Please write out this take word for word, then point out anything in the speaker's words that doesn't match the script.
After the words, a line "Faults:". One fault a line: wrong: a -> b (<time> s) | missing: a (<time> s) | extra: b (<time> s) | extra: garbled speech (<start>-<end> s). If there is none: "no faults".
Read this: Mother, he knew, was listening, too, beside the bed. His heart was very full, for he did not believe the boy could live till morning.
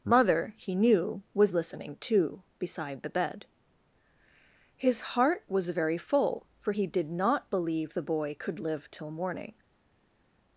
Mother, he knew, was listening, too, beside the bed. His heart was very full, for he did not believe the boy could live till morning.
Faults:
no faults